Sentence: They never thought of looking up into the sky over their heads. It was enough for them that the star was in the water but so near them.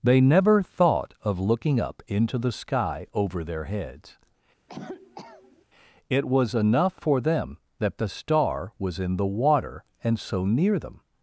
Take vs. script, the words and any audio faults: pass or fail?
fail